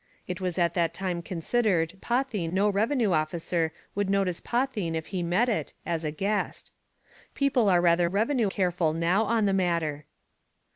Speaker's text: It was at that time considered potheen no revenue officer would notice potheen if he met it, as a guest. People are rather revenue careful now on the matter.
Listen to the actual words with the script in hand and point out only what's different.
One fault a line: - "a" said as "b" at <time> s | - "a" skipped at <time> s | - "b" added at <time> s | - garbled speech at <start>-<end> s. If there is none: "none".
none